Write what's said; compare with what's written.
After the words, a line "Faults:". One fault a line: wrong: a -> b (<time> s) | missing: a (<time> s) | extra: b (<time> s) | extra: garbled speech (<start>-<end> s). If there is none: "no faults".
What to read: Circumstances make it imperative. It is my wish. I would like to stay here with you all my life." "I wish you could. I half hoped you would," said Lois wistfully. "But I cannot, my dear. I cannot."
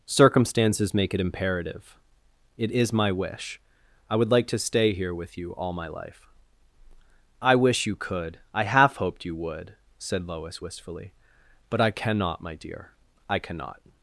Circumstances make it imperative. It is my wish. I would like to stay here with you all my life." "I wish you could. I half hoped you would," said Lois wistfully. "But I cannot, my dear. I cannot."
Faults:
no faults